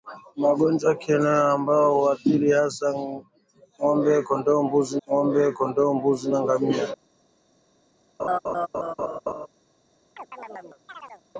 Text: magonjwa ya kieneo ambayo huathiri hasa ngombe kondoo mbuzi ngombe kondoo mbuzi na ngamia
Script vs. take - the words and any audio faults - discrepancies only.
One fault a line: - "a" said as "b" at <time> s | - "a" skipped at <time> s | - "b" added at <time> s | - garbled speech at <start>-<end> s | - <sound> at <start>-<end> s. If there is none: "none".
- laugh at 8.2-9.5 s
- chirp at 10.2-11.2 s